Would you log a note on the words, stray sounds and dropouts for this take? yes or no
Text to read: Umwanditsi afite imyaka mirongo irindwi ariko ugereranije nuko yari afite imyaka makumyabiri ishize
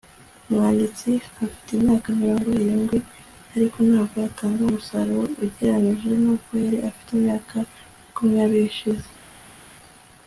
yes